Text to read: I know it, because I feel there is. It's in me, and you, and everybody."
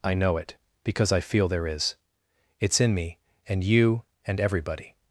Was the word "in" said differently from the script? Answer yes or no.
no